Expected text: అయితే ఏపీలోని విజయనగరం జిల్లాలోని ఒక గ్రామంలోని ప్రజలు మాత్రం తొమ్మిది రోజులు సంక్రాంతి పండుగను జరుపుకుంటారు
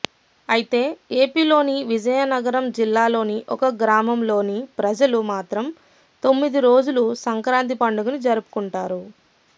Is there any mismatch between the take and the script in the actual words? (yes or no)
no